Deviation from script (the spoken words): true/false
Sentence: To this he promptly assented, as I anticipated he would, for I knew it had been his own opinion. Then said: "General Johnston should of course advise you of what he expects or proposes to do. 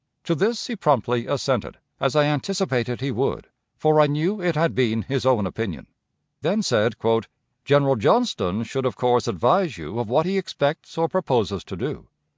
false